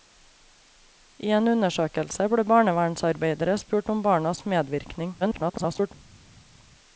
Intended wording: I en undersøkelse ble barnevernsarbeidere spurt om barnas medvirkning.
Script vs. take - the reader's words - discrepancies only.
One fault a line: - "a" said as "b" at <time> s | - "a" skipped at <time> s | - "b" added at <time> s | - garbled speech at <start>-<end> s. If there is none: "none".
- garbled speech at 5.2-5.9 s